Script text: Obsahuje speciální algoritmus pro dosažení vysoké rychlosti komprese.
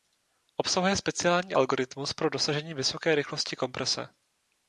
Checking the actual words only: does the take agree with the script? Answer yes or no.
yes